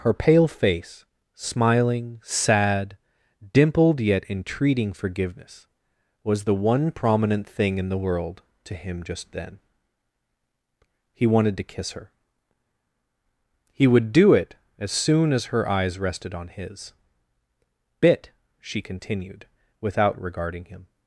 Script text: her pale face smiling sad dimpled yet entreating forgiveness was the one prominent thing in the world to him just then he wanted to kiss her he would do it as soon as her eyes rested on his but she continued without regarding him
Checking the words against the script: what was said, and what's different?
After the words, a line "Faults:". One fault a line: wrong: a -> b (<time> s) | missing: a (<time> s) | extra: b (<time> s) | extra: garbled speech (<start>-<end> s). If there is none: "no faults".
her pale face smiling sad dimpled yet entreating forgiveness was the one prominent thing in the world to him just then he wanted to kiss her he would do it as soon as her eyes rested on his bit she continued without regarding him
Faults:
wrong: but -> bit (18.0 s)